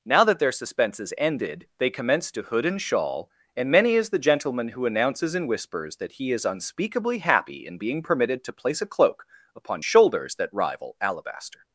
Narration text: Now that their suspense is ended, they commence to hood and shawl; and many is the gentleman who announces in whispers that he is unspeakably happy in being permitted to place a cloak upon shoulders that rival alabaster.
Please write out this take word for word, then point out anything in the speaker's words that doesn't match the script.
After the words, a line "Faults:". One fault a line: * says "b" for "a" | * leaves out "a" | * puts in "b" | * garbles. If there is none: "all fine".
Now that their suspense is ended, they commence to hood and shawl; and many is the gentleman who announces in whispers that he is unspeakably happy in being permitted to place a cloak upon shoulders that rival alabaster.
Faults:
all fine